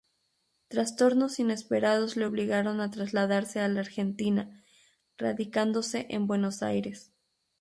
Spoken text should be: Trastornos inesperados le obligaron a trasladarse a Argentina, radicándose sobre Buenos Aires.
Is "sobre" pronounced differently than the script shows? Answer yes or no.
yes